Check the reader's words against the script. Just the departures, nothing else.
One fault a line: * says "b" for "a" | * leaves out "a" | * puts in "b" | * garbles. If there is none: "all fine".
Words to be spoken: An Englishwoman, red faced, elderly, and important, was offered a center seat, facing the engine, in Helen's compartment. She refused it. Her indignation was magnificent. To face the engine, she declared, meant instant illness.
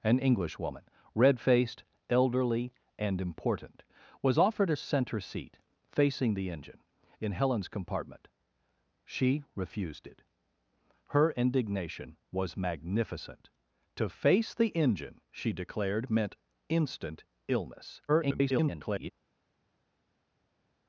* garbles